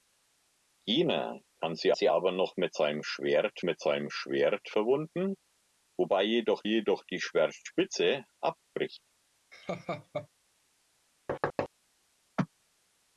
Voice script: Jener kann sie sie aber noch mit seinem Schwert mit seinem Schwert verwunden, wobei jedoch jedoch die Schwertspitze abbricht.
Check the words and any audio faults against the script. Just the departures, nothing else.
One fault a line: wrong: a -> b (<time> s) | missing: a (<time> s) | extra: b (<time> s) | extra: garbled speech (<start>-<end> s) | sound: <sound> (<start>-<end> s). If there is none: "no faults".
sound: laugh (9.5-10.3 s)
sound: thud (11.3-11.7 s)